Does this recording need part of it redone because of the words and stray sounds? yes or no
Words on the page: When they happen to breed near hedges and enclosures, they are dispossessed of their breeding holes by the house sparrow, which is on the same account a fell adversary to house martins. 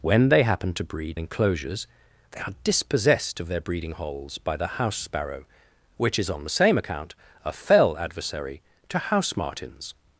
yes